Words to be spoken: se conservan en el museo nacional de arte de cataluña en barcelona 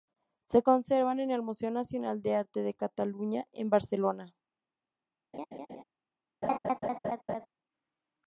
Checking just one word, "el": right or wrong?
right